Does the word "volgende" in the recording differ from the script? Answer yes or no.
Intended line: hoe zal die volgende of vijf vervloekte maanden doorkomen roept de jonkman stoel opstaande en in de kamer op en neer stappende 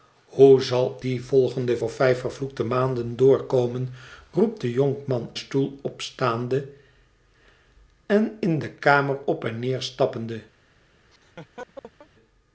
no